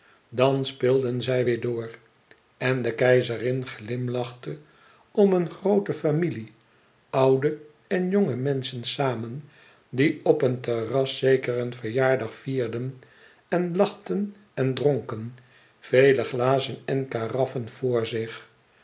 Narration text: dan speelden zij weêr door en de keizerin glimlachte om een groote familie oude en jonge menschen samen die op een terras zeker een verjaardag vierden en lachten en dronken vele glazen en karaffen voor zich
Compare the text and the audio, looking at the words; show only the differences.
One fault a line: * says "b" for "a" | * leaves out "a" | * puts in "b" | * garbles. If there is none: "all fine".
all fine